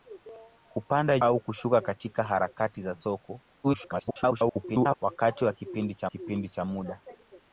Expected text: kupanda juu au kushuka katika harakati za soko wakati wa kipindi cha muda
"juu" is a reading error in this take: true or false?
true